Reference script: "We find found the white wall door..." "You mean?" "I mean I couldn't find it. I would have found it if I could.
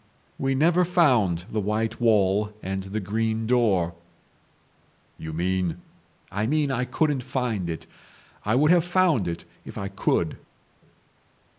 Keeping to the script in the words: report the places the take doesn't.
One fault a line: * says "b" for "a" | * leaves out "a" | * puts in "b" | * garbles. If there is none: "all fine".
* says "never" for "find"
* puts in "and the green"